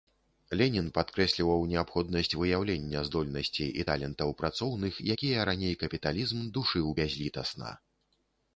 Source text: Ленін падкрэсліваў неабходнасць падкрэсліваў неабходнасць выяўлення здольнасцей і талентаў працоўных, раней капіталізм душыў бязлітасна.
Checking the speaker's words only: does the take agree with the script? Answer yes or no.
no